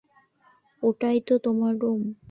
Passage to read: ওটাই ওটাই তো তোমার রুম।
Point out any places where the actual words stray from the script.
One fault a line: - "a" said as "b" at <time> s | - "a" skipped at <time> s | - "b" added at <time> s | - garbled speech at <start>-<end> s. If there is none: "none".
- "ওটাই" skipped at 1.2 s